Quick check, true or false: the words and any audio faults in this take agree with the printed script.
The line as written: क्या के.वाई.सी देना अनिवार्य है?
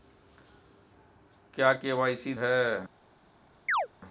false